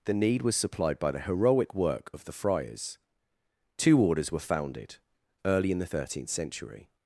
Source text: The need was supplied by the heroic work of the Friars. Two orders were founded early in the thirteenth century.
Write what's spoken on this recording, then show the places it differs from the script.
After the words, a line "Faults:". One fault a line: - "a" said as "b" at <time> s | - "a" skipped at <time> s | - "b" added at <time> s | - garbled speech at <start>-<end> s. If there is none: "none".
The need was supplied by the heroic work of the Friars. Two orders were founded early in the thirteenth century.
Faults:
none